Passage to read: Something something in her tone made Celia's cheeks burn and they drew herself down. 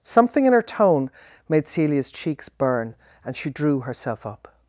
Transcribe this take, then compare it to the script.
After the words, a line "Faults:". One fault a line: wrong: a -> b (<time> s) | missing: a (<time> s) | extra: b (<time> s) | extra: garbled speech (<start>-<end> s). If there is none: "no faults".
Something in her tone made Celia's cheeks burn and she drew herself up.
Faults:
missing: something (0.5 s)
wrong: they -> she (3.4 s)
wrong: down -> up (4.3 s)